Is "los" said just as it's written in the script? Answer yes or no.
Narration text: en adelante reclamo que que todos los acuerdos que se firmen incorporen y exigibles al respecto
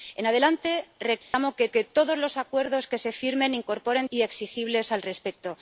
yes